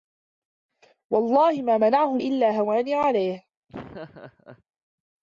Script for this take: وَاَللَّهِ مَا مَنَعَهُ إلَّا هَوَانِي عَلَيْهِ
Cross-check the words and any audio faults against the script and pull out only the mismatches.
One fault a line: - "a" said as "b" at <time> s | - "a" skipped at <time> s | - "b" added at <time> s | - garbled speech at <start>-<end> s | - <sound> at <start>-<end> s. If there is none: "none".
- laugh at 3.7-4.6 s